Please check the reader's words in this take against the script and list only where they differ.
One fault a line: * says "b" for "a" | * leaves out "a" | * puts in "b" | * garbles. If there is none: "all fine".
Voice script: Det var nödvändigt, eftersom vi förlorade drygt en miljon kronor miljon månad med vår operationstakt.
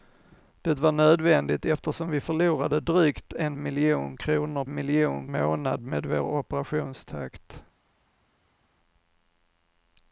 all fine